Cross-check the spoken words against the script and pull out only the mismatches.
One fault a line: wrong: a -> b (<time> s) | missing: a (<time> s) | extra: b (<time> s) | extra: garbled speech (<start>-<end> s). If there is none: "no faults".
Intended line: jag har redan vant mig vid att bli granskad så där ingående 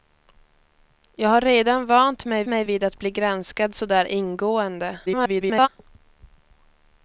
extra: mig (2.5 s)
extra: garbled speech (5.1-5.7 s)